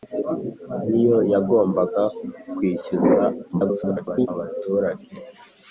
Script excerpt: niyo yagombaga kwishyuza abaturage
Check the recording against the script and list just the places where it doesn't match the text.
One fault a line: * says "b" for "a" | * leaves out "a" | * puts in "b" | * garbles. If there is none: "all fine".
* garbles